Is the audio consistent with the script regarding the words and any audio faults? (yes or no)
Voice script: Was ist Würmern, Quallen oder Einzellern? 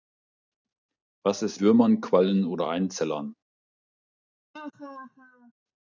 no